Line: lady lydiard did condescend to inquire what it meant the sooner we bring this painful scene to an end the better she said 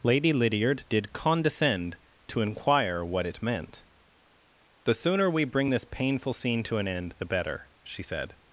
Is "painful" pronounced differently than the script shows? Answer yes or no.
no